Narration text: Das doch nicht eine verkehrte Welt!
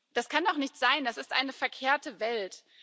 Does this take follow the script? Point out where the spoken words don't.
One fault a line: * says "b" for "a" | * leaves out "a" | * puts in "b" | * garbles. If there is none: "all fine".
* puts in "kann"
* puts in "sein das ist"